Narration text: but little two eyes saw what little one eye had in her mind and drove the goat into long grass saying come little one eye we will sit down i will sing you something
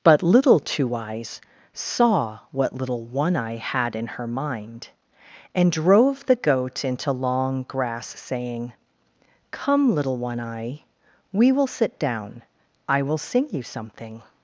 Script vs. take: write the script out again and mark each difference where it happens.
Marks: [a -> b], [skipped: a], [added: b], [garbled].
but little two eyes saw what little one eye had in her mind and drove the goat into long grass saying come little one eye we will sit down i will sing you something